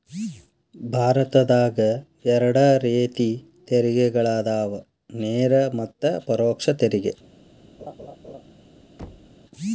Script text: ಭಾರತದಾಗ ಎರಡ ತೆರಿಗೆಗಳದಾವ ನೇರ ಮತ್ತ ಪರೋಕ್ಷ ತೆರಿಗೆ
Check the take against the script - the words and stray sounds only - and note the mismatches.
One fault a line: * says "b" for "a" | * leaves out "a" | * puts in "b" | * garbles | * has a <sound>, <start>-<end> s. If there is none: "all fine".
* puts in "ರೇತಿ"
* has a laugh, 7.8-8.4 s
* has a thud, 9.0-9.4 s